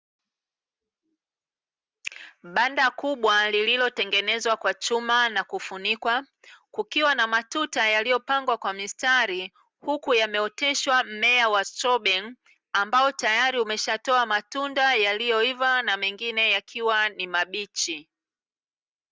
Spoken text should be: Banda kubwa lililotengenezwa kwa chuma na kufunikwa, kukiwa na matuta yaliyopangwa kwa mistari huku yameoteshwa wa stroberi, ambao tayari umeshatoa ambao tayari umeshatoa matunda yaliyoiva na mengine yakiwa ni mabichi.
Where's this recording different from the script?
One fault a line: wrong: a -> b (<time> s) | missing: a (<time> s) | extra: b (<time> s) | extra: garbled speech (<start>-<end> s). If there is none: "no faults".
extra: mmea (11.0 s)
missing: ambao tayari umeshatoa (14.3 s)